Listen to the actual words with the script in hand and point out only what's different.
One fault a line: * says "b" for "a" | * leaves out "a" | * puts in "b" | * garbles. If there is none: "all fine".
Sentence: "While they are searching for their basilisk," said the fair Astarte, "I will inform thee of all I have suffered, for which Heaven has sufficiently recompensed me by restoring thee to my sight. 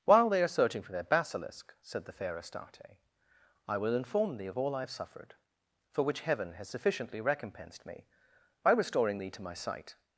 all fine